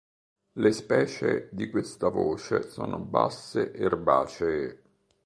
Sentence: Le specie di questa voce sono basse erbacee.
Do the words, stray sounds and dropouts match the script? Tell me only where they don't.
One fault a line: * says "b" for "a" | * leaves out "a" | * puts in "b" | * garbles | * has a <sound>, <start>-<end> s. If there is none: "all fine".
all fine